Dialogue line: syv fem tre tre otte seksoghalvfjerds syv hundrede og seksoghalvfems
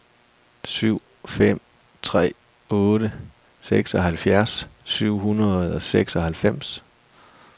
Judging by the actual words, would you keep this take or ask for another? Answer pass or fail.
fail